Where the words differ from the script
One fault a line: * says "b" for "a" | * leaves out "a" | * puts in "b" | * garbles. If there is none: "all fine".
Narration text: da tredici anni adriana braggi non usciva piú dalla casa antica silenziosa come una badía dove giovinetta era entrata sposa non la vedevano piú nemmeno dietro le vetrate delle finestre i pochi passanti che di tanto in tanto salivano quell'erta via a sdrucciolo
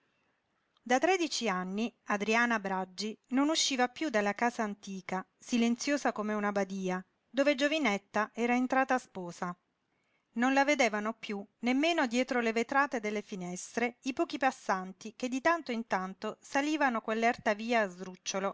all fine